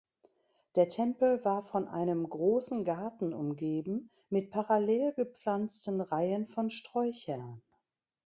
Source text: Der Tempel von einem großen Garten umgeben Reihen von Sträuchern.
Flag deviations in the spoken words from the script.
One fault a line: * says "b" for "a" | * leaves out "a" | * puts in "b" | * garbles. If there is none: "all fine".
* puts in "war"
* puts in "mit parallel gepflanzten"